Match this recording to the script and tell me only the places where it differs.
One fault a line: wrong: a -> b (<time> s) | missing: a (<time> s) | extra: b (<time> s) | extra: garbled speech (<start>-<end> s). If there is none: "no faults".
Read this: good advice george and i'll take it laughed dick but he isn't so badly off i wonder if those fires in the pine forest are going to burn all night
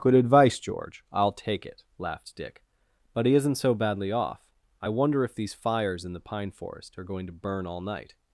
missing: and (1.0 s)
wrong: those -> these (5.4 s)